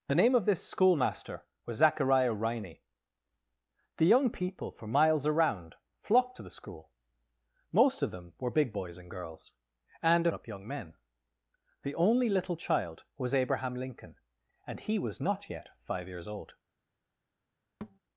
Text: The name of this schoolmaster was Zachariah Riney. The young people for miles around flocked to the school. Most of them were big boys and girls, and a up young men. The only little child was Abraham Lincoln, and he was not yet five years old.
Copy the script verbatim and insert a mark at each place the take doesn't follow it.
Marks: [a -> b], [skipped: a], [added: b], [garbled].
The name of this schoolmaster was Zachariah Riney. The young people for miles around flocked to the school. Most of them were big boys and girls, and a up young men. The only little child was Abraham Lincoln, and he was not yet five years old.